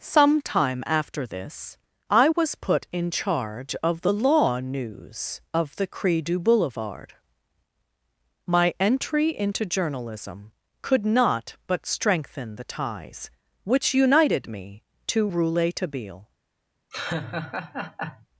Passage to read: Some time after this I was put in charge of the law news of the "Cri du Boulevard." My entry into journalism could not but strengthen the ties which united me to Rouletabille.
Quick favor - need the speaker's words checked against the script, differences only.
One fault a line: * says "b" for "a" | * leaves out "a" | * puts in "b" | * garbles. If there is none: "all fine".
all fine